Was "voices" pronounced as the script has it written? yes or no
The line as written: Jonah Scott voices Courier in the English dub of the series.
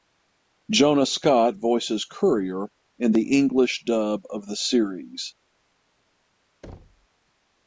yes